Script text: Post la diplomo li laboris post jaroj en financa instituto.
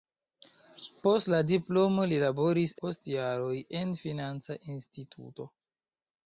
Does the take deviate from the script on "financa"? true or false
false